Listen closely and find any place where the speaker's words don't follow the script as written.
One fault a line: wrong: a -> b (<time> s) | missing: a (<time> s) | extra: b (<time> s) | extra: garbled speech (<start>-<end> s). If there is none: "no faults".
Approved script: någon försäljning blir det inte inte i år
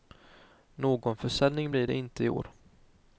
missing: inte (2.2 s)